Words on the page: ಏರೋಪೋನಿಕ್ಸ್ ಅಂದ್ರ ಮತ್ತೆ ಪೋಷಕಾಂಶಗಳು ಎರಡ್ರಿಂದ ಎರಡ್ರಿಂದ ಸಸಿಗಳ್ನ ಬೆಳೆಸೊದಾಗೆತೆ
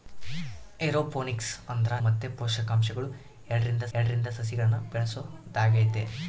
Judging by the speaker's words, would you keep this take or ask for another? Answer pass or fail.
pass